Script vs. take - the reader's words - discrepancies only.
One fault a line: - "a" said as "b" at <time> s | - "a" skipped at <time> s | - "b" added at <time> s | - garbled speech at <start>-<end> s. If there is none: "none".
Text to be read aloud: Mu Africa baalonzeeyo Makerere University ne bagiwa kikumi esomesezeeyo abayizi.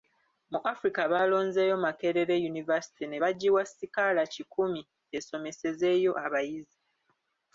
- "sikaala" added at 3.7 s